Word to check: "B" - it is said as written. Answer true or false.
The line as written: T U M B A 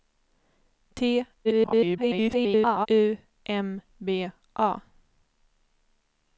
true